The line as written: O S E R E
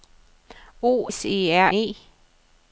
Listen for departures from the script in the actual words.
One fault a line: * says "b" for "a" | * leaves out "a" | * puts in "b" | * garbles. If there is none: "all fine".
all fine